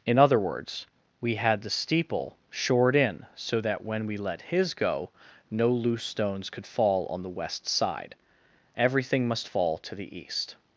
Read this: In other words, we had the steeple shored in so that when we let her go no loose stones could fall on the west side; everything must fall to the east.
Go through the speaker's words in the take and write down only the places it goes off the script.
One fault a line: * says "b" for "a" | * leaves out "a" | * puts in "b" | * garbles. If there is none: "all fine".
* says "his" for "her"